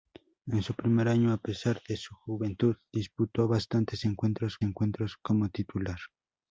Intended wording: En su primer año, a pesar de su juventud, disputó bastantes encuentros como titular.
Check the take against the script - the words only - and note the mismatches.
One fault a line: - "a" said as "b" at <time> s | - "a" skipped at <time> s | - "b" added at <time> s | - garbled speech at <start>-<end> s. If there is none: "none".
- "encuentros" added at 4.6 s